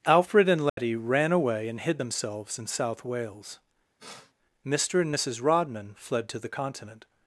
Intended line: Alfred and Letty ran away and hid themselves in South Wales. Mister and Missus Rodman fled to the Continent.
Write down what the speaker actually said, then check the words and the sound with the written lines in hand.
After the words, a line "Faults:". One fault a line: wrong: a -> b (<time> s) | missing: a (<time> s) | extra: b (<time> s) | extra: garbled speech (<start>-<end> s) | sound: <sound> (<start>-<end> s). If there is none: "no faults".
Alfred and Letty ran away and hid themselves in South Wales. Mister and Missus Rodman fled to the Continent.
Faults:
sound: dropout (0.7-0.8 s)
sound: sniff (4.0-4.3 s)